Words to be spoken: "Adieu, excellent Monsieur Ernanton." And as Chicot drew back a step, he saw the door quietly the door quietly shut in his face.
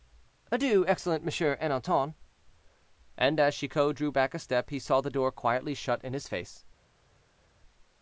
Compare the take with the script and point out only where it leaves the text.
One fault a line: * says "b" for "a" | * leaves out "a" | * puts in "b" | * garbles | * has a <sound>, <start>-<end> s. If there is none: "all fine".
* leaves out "the door quietly"